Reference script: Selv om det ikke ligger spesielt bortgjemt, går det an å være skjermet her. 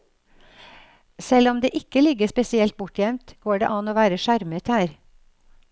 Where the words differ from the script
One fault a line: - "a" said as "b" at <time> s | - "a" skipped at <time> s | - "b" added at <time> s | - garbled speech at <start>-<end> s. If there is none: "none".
none